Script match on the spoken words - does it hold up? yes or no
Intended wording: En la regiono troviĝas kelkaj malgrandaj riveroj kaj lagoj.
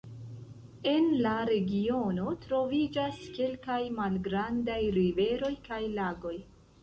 yes